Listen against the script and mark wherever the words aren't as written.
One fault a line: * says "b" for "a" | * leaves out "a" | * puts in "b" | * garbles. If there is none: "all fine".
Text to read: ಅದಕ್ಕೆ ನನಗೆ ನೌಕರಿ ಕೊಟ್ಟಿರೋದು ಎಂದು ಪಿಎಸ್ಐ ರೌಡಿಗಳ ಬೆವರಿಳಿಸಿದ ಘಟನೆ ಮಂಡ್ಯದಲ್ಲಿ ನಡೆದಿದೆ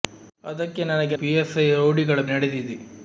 * leaves out "ನೌಕರಿ ಕೊಟ್ಟಿರೋದು ಎಂದು"
* leaves out "ಬೆವರಿಳಿಸಿದ ಘಟನೆ ಮಂಡ್ಯದಲ್ಲಿ"